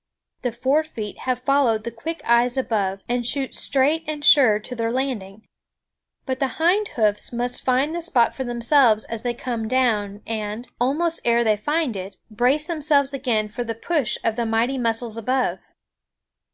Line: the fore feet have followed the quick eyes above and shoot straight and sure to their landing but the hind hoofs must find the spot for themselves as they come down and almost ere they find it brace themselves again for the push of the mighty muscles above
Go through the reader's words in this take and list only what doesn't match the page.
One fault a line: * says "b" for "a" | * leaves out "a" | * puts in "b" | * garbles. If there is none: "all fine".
all fine